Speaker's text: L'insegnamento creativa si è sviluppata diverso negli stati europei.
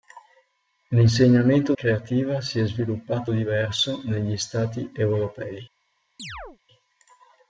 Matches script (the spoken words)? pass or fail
pass